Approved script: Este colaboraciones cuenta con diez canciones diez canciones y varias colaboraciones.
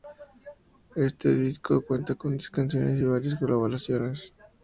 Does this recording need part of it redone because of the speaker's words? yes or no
yes